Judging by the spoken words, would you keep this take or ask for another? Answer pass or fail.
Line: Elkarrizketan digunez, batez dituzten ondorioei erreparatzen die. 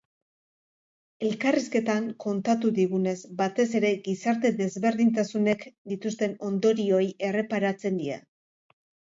fail